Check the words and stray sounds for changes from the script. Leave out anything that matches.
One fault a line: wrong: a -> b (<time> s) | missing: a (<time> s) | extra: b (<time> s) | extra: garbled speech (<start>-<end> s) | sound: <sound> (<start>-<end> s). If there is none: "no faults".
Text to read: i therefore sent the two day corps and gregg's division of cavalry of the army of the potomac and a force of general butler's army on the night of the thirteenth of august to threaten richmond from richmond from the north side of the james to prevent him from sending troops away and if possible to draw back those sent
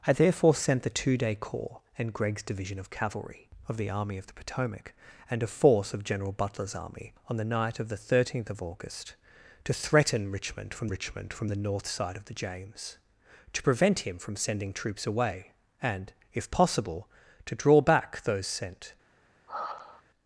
sound: sigh (19.5-20.0 s)